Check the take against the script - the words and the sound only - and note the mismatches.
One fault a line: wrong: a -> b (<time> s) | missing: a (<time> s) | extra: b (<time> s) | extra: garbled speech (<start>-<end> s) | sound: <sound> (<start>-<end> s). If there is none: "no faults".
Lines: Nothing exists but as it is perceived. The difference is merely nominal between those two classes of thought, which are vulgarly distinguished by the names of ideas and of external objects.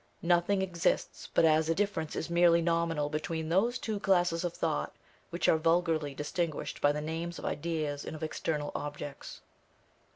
missing: is perceived The (1.8 s)